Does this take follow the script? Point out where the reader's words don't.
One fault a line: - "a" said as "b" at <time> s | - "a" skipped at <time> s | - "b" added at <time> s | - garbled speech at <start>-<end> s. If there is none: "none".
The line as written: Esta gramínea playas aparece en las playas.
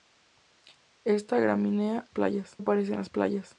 none